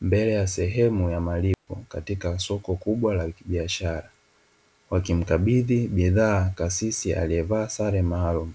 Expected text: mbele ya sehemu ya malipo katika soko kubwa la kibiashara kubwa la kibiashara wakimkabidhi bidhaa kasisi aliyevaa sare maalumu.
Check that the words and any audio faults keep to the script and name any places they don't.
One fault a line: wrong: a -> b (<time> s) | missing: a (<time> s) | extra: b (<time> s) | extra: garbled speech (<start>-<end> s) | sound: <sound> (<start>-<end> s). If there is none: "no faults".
sound: dropout (1.5-1.7 s)
missing: kubwa la kibiashara (4.1 s)